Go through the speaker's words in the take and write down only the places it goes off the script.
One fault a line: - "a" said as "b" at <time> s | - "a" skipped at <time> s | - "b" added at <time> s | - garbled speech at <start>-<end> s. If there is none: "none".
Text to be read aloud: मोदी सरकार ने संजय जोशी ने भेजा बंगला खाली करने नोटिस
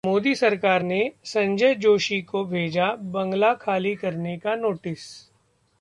- "ने" said as "को" at 2.2 s
- "का" added at 4.4 s